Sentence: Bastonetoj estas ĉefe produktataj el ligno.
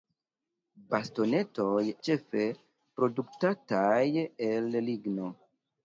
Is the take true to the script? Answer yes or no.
no